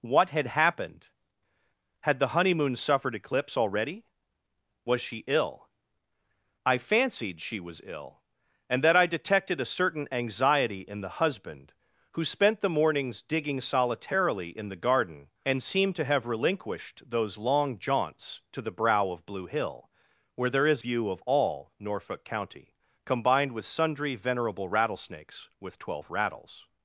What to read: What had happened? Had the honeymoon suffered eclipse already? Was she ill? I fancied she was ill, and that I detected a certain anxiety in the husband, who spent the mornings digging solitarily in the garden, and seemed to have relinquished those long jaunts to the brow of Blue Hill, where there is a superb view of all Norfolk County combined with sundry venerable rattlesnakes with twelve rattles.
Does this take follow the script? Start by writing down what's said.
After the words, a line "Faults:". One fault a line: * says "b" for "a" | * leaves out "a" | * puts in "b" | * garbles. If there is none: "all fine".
What had happened? Had the honeymoon suffered eclipse already? Was she ill? I fancied she was ill, and that I detected a certain anxiety in the husband, who spent the mornings digging solitarily in the garden, and seemed to have relinquished those long jaunts to the brow of Blue Hill, where there is view of all Norfolk County combined with sundry venerable rattlesnakes with twelve rattles.
Faults:
* leaves out "a superb"